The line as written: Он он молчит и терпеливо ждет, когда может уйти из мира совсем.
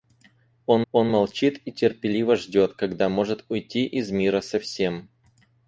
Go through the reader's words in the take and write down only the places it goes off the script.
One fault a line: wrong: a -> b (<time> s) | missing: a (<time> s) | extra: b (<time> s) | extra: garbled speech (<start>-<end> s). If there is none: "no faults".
no faults